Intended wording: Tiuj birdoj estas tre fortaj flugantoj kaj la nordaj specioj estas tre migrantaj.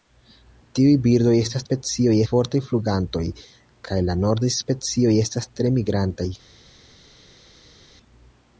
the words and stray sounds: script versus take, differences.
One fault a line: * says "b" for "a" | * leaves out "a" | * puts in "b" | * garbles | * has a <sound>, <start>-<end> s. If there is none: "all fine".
* says "specioj" for "tre"